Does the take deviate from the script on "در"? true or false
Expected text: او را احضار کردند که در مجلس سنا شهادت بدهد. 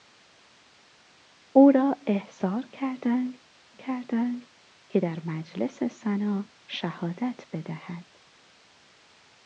false